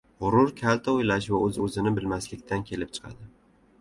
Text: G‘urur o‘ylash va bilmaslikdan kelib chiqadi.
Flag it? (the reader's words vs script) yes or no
yes